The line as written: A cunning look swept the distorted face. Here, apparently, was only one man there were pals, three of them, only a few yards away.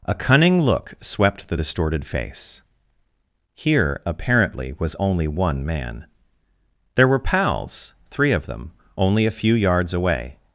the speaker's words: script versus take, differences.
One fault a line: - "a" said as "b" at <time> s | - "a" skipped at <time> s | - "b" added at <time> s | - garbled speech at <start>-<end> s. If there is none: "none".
none